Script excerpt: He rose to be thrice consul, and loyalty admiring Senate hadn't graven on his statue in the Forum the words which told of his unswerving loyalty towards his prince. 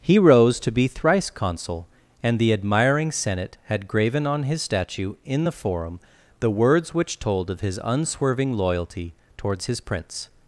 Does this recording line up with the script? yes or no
no